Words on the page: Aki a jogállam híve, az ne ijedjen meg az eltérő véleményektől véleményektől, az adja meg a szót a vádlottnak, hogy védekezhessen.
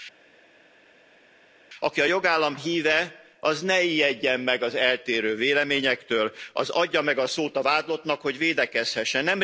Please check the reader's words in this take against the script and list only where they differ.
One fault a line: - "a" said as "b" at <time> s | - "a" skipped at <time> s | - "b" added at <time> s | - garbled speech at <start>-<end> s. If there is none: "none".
- "véleményektől" skipped at 6.3 s